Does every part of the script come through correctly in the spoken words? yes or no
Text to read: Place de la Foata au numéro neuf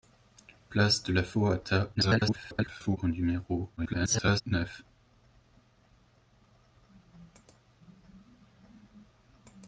no